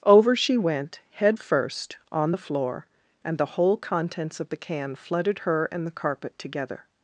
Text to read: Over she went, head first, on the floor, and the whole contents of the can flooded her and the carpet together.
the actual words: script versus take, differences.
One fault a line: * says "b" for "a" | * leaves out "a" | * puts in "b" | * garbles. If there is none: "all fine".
all fine